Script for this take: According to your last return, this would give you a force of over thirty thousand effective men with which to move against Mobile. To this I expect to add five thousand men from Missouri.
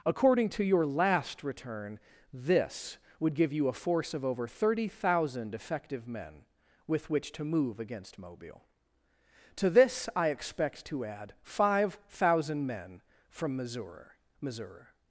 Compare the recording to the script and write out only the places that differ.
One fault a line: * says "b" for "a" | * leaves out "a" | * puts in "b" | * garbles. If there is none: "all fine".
* puts in "Missouri"